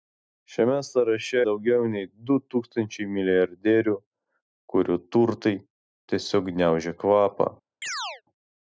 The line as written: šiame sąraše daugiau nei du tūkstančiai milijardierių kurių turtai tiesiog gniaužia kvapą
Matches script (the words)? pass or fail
pass